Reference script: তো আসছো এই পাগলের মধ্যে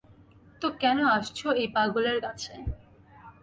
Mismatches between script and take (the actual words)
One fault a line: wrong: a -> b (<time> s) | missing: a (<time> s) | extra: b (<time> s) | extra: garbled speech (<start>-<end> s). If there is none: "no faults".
extra: কেন (0.8 s)
wrong: মধ্যে -> কাছে (2.2 s)